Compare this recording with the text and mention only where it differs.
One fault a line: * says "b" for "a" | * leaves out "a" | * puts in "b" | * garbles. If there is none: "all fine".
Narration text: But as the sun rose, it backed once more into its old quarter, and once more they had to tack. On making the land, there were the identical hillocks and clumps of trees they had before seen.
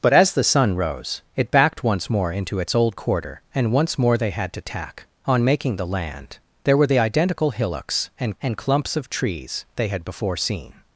* puts in "and"